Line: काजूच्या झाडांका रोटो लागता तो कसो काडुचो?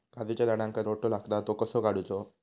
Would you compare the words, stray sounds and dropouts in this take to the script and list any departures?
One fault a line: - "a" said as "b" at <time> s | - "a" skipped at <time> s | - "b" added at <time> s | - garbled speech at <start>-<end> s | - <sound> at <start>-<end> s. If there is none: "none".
none